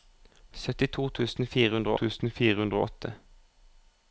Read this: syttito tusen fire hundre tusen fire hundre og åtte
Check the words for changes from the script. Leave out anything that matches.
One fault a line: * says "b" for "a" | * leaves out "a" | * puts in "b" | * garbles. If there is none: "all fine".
all fine